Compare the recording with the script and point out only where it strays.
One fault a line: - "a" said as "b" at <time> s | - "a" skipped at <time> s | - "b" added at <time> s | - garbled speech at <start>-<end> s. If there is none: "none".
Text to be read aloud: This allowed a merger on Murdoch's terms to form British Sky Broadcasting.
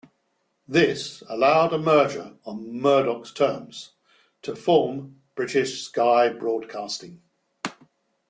none